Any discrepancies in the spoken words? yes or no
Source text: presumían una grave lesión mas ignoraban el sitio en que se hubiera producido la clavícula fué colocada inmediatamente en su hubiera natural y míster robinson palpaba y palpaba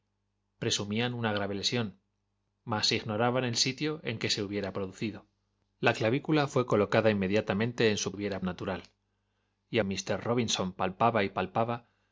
no